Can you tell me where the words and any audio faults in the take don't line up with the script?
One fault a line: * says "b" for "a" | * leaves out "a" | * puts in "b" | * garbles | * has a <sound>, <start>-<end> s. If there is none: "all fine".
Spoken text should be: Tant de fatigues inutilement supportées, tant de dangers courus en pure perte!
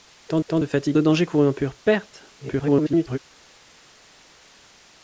* puts in "tant"
* leaves out "inutilement supportées tant"
* garbles